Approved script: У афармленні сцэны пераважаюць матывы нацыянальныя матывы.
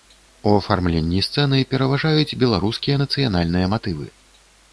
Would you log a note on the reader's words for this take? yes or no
yes